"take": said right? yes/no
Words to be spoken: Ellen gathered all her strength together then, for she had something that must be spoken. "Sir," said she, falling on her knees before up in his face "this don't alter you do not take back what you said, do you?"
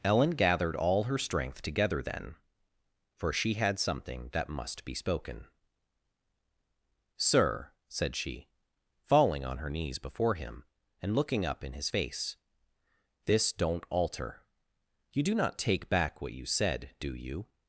yes